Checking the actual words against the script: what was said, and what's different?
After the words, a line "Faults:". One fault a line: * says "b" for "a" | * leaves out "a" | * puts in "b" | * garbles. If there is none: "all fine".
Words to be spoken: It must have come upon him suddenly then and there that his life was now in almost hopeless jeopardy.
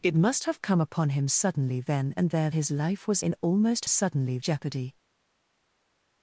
It must have come upon him suddenly then and there his life was in almost suddenly jeopardy.
Faults:
* leaves out "that"
* leaves out "now"
* says "suddenly" for "hopeless"